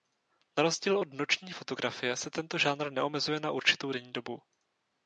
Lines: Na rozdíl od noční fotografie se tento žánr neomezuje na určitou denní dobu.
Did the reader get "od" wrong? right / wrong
right